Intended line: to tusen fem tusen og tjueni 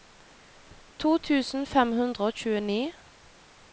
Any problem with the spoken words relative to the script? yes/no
yes